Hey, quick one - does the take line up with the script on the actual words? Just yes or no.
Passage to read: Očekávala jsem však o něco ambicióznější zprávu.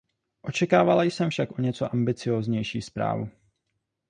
yes